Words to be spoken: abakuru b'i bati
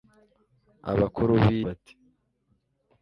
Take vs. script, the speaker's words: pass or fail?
pass